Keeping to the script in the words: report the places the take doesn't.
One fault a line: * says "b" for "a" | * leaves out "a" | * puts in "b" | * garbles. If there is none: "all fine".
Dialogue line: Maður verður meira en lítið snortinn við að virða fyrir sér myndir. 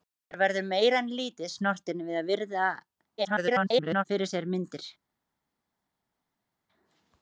* garbles